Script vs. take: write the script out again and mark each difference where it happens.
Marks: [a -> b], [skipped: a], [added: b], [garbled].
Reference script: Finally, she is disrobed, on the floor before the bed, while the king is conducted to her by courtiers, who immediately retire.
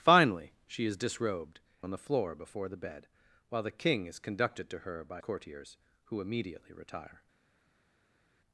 Finally, she is disrobed, on the floor before the bed, while the king is conducted to her by courtiers, who immediately retire.